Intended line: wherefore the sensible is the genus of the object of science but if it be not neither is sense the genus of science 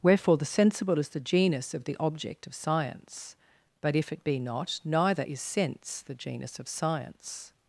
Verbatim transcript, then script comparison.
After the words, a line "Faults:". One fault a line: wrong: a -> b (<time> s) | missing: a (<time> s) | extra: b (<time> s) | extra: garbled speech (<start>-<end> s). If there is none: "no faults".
wherefore the sensible is the genus of the object of science but if it be not neither is sense the genus of science
Faults:
no faults